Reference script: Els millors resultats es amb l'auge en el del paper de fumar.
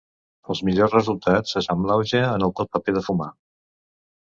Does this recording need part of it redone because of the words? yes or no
no